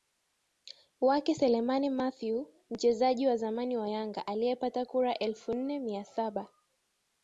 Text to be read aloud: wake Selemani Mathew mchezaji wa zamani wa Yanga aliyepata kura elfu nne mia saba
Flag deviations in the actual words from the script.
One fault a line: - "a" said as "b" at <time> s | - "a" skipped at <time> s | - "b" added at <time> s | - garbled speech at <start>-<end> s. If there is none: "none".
none